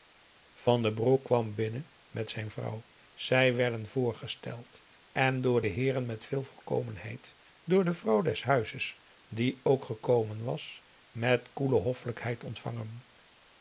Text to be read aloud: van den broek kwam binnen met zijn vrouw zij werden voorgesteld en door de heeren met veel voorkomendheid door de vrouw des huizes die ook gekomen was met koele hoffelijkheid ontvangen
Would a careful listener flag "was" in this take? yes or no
no